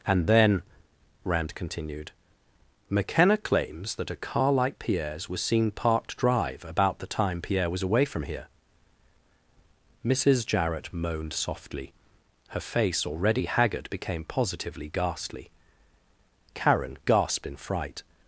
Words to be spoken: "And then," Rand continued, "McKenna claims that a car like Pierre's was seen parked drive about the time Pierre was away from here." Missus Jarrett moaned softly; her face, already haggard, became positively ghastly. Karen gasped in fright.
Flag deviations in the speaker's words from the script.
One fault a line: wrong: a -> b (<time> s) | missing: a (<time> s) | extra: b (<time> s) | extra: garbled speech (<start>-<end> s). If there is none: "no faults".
no faults